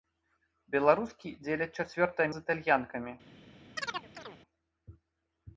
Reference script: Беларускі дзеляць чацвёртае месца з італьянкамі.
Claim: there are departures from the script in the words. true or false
true